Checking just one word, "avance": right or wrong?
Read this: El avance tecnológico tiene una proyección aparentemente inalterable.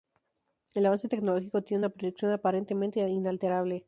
right